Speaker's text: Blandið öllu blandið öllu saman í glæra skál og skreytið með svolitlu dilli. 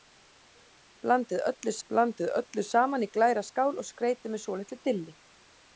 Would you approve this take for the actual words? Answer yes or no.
yes